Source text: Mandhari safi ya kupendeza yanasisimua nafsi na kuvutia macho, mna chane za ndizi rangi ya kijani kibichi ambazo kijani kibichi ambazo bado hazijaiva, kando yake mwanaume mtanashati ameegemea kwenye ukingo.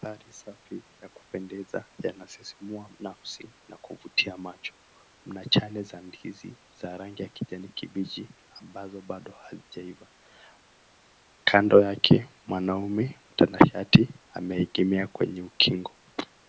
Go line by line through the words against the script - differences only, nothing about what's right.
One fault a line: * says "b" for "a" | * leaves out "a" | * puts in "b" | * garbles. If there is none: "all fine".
* puts in "za"
* leaves out "kijani kibichi ambazo"